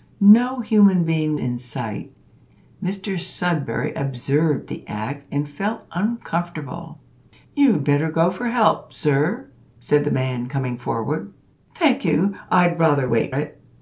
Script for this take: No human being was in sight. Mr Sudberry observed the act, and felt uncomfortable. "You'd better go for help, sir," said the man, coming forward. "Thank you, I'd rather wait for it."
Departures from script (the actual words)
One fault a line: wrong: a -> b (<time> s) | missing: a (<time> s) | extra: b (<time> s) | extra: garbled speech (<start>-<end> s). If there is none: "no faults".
missing: was (1.4 s)
missing: for (13.4 s)